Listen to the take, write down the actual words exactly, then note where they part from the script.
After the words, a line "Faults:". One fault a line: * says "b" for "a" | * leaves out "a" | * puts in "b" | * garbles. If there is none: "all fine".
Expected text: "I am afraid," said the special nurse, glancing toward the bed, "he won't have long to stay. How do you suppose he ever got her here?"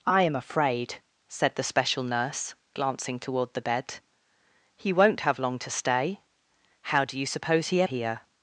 "I am afraid," said the special nurse, glancing toward the bed, "he won't have long to stay. How do you suppose he here?"
Faults:
* leaves out "ever got her"